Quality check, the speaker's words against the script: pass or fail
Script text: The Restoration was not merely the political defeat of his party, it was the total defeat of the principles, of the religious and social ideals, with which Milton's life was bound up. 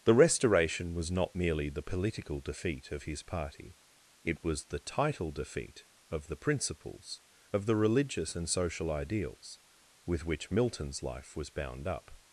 fail